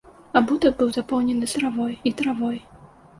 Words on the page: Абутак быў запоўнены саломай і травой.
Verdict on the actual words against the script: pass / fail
fail